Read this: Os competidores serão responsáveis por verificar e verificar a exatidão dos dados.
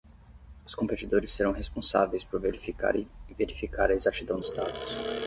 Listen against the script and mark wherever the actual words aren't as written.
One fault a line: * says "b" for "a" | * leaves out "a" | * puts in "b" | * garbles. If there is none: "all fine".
all fine